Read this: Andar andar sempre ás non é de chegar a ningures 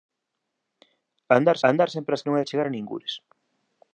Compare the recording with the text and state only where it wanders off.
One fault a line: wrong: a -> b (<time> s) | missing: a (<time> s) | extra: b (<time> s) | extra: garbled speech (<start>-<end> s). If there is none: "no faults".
no faults